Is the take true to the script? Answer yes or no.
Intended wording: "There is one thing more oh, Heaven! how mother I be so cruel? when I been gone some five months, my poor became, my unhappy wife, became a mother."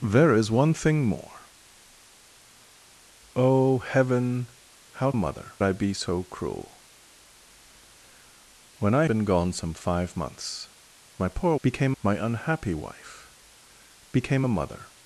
yes